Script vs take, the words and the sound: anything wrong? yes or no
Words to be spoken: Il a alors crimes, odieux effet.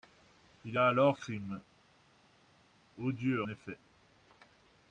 no